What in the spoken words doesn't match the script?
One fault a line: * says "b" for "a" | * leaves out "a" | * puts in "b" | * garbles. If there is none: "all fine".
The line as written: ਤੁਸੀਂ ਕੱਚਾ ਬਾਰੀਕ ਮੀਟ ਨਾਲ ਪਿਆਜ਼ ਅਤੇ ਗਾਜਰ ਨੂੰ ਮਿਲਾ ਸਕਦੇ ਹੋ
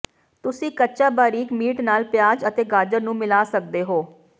all fine